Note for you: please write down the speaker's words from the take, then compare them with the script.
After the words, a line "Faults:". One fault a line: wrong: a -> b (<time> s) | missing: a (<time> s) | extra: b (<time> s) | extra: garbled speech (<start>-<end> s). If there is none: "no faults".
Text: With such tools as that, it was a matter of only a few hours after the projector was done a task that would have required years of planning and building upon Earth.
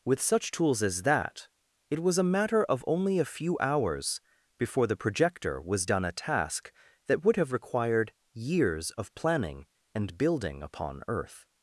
With such tools as that, it was a matter of only a few hours before the projector was done a task that would have required years of planning and building upon Earth.
Faults:
wrong: after -> before (4.6 s)